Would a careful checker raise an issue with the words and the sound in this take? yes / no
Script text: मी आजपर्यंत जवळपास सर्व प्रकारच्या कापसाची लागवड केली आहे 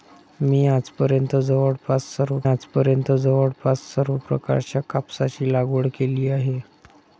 yes